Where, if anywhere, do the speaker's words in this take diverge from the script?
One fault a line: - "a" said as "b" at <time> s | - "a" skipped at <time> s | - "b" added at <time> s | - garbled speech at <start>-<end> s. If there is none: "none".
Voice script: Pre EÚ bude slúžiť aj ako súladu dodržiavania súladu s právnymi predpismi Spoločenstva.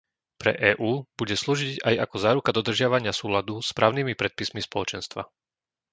- "súladu" said as "záruka" at 2.2 s